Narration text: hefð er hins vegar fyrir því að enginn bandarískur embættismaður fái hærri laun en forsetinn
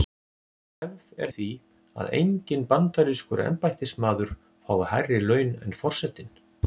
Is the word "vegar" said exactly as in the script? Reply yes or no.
no